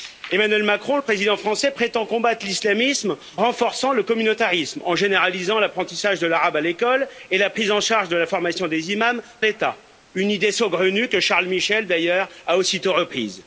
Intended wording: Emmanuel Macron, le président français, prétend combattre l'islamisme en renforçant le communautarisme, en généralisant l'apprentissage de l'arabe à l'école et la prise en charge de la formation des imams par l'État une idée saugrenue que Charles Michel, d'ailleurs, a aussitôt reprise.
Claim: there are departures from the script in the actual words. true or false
true